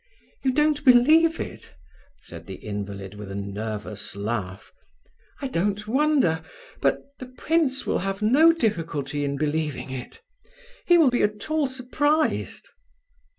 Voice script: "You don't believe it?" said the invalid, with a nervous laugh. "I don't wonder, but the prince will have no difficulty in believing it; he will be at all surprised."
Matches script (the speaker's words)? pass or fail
pass